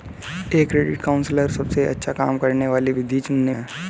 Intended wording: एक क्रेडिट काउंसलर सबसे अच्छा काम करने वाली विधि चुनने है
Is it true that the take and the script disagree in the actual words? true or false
false